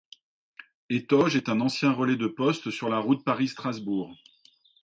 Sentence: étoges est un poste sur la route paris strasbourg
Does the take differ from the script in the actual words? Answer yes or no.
yes